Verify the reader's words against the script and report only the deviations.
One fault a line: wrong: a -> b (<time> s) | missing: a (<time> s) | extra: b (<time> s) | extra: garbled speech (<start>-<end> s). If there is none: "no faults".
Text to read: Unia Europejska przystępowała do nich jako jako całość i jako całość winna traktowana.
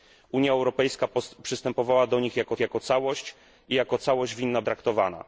no faults